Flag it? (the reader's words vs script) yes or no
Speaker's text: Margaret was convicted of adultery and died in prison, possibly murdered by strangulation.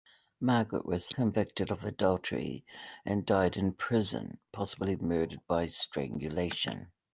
no